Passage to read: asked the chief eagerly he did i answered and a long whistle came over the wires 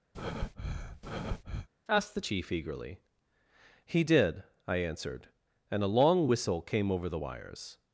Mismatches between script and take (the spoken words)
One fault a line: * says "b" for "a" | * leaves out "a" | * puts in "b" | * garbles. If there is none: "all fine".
all fine